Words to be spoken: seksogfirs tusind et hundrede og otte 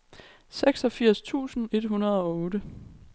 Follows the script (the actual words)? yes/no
yes